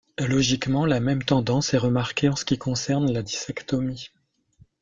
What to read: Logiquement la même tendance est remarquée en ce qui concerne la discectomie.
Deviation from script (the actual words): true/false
false